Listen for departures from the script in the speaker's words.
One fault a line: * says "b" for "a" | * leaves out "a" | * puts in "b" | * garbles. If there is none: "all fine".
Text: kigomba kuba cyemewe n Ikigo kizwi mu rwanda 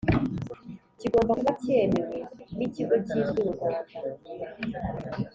all fine